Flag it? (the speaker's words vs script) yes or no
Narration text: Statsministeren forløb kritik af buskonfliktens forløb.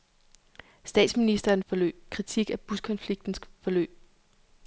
no